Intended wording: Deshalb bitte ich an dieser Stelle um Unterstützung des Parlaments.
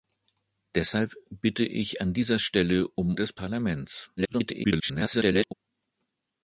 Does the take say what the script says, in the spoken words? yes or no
no